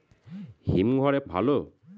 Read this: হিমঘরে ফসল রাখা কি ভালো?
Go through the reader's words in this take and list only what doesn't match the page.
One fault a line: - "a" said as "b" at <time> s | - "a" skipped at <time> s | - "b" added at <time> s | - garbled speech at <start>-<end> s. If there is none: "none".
- "ফসল রাখা কি" skipped at 1.2 s